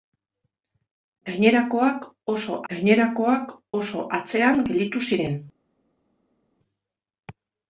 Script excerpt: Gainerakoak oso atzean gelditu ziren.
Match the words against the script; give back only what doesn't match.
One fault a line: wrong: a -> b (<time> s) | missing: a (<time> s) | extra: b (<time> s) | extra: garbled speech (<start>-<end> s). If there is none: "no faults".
extra: gainerakoak oso (2.7 s)